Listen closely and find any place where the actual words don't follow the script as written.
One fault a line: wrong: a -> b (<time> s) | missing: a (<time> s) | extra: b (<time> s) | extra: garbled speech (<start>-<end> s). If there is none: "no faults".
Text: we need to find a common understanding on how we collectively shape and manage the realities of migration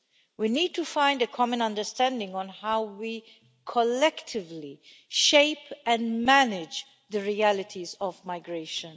no faults